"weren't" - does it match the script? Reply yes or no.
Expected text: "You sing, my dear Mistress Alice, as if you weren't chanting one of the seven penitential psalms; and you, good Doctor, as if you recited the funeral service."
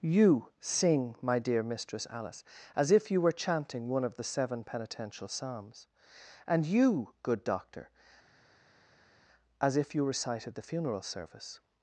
no